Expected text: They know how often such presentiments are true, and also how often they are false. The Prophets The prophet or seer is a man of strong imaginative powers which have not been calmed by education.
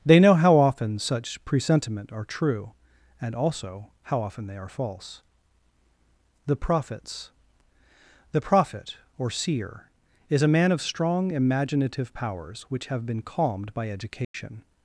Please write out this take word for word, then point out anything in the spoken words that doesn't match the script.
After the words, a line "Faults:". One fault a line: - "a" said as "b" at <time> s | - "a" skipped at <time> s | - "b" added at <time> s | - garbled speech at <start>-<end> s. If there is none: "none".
They know how often such presentiment are true, and also how often they are false. The Prophets The prophet or seer is a man of strong imaginative powers which have been calmed by education.
Faults:
- "presentiments" said as "presentiment" at 1.4 s
- "not" skipped at 13.1 s